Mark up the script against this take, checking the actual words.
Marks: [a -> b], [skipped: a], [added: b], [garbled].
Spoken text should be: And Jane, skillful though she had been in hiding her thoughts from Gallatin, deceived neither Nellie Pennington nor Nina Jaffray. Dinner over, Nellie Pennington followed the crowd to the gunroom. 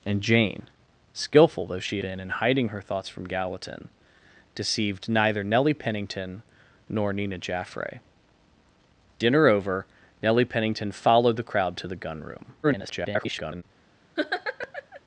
And Jane, skillful though she [skipped: had] been in hiding her thoughts from Gallatin, deceived neither Nellie Pennington nor Nina Jaffray. Dinner over, Nellie Pennington followed the crowd to the gunroom. [garbled]